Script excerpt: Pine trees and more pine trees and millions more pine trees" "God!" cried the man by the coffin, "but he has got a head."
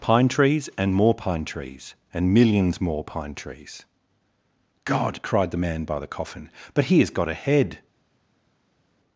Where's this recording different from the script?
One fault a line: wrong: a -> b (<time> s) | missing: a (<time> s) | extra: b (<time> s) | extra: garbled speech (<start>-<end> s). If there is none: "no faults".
no faults